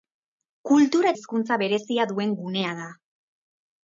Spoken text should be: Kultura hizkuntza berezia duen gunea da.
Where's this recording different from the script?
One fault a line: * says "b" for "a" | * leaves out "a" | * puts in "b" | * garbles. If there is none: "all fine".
all fine